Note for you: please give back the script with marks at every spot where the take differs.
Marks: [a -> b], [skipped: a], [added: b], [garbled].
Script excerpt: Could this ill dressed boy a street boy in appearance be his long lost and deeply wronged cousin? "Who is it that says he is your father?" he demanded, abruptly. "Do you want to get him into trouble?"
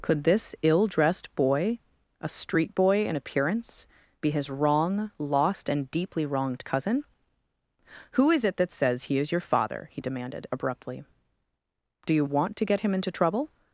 Could this ill dressed boy a street boy in appearance be his [long -> wrong] lost and deeply wronged cousin? "Who is it that says he is your father?" he demanded, abruptly. "Do you want to get him into trouble?"